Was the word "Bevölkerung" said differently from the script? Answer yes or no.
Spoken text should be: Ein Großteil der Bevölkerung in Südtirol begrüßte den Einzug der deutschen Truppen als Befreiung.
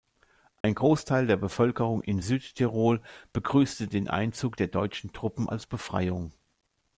no